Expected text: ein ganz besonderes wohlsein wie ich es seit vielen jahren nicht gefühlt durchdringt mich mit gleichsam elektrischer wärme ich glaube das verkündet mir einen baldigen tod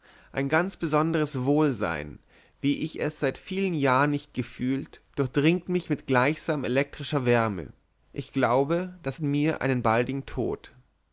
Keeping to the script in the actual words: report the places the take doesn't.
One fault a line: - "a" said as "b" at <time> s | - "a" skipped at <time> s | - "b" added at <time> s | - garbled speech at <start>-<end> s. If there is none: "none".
- "verkündet" skipped at 9.2 s